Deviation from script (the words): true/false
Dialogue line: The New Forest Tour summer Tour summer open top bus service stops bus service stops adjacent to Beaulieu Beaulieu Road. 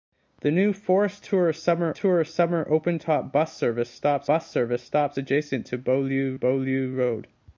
false